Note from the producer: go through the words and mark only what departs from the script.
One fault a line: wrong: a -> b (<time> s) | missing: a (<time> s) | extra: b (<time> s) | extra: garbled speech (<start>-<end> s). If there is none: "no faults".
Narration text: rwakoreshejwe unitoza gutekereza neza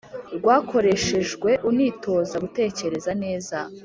no faults